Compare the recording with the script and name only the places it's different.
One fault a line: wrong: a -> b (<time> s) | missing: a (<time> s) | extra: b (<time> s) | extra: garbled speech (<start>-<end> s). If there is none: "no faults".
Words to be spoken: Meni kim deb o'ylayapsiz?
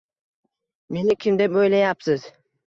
no faults